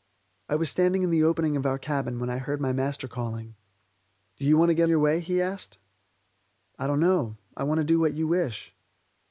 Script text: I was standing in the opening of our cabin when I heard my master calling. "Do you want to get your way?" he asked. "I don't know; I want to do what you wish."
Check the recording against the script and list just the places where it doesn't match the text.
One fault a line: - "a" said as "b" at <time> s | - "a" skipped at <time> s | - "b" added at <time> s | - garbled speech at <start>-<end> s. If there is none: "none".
none